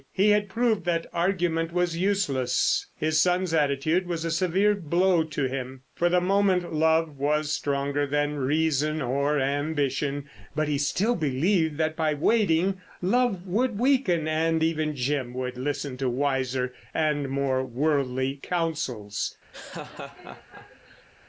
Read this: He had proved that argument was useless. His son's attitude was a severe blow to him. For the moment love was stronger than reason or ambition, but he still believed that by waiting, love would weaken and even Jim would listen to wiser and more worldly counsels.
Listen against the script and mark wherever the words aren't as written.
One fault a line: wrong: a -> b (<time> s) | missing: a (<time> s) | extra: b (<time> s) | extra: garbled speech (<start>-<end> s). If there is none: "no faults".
no faults